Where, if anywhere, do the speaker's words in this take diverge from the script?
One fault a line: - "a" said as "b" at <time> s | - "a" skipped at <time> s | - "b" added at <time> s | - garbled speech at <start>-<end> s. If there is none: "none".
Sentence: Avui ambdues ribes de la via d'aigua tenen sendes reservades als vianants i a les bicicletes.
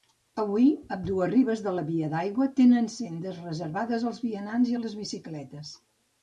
none